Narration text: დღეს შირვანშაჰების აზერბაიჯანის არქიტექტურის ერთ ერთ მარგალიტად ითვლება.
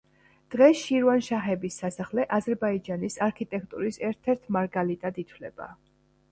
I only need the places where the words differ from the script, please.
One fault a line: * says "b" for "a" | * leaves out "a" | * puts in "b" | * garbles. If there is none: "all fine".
* puts in "სასახლე"